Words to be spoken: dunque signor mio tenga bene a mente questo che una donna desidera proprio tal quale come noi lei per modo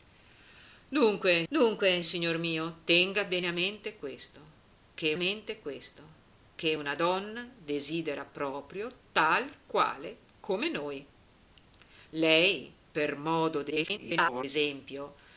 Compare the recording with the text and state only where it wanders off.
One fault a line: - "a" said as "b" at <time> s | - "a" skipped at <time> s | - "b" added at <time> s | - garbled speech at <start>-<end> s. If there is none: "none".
- "dunque" added at 1.5 s
- "mente questo che" added at 5.1 s
- garbled speech at 13.7-14.4 s